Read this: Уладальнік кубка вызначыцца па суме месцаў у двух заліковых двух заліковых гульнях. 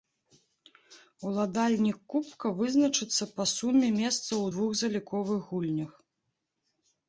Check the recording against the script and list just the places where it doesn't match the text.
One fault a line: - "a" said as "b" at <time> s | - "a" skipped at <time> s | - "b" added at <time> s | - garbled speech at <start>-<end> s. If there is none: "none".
- "двух заліковых" skipped at 5.4 s